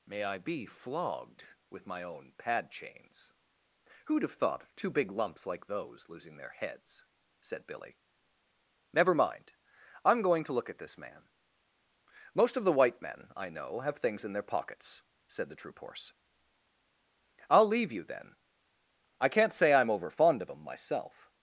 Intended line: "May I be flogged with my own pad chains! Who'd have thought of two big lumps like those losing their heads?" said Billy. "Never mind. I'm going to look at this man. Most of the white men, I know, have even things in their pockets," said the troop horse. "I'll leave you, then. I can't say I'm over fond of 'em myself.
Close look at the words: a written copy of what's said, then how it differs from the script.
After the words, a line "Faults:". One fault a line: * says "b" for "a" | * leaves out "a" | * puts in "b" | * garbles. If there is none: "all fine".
"May I be flogged with my own pad chains! Who'd have thought of two big lumps like those losing their heads?" said Billy. "Never mind. I'm going to look at this man. Most of the white men, I know, have things in their pockets," said the troop horse. "I'll leave you, then. I can't say I'm over fond of 'em myself.
Faults:
* leaves out "even"